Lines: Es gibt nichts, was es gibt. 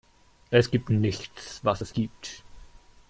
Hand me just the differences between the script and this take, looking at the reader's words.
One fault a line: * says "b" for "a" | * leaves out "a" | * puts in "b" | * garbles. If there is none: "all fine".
all fine